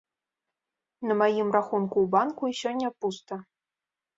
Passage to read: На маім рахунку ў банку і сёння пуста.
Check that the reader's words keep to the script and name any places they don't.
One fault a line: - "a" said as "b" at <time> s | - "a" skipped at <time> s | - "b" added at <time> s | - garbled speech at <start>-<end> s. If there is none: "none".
none